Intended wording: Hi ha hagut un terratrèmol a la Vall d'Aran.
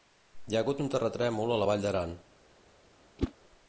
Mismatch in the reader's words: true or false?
false